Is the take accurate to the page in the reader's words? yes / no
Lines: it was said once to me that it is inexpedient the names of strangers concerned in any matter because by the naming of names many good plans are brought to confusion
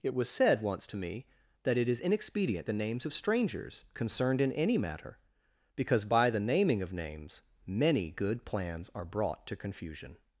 yes